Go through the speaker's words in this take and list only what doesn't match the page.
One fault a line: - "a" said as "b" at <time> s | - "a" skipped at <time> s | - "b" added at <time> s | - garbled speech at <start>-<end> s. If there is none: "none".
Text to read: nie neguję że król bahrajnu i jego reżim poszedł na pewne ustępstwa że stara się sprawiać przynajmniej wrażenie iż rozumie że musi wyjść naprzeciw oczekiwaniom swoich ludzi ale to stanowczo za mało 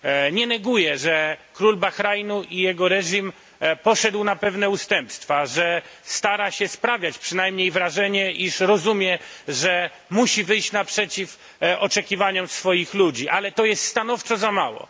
- "jest" added at 13.6 s